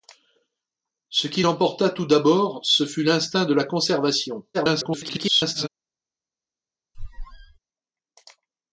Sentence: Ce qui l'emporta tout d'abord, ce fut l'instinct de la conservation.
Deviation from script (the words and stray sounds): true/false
true